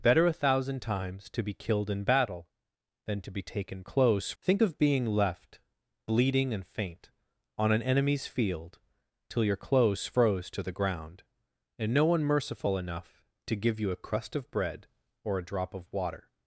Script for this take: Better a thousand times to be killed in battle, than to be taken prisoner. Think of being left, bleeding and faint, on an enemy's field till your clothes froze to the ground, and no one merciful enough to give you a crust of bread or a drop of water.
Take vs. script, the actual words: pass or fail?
fail